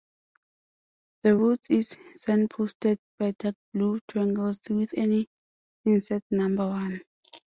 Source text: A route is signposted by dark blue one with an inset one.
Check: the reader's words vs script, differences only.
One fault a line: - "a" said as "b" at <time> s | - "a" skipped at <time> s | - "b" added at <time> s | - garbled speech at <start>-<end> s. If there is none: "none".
- "A" said as "The" at 1.2 s
- "one" said as "triangles" at 4.1 s
- "number" added at 6.3 s